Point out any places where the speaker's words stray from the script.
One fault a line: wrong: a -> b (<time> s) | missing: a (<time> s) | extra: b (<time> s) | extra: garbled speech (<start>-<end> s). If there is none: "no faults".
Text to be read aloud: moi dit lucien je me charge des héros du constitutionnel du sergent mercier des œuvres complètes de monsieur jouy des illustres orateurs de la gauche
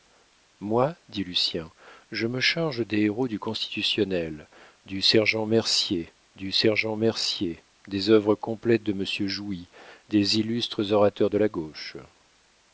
extra: du sergent mercier (6.4 s)